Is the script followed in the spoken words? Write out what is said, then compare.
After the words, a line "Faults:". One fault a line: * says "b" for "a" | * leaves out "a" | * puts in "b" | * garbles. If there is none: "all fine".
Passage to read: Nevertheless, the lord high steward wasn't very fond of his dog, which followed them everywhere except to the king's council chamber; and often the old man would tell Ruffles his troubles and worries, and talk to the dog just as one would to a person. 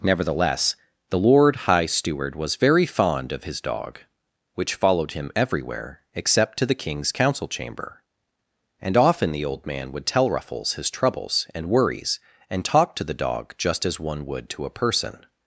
Nevertheless, the lord high steward was very fond of his dog, which followed him everywhere except to the king's council chamber; and often the old man would tell Ruffles his troubles and worries, and talk to the dog just as one would to a person.
Faults:
* says "was" for "wasn't"
* says "him" for "them"